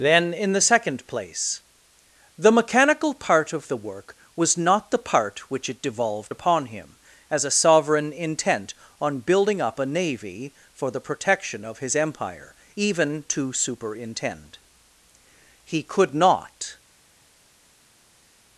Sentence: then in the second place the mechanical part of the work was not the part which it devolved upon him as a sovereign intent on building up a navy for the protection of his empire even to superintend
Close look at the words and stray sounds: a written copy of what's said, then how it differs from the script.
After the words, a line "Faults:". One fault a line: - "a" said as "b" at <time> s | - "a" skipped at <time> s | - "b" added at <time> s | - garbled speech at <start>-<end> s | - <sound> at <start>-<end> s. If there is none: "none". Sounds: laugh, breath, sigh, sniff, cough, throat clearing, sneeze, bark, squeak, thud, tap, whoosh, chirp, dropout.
then in the second place the mechanical part of the work was not the part which it devolved upon him as a sovereign intent on building up a navy for the protection of his empire even to superintend he could not
Faults:
- "he could not" added at 15.6 s